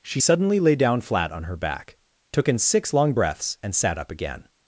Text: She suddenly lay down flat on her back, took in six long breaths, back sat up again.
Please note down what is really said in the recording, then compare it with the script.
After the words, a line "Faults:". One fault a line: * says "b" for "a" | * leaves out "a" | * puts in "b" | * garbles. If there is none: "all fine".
She suddenly lay down flat on her back, took in six long breaths, and sat up again.
Faults:
* says "and" for "back"